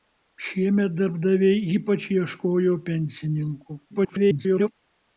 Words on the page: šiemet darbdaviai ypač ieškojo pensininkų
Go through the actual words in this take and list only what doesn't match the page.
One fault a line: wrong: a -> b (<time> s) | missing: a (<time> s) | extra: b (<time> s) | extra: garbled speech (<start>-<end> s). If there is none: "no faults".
extra: garbled speech (3.9-4.7 s)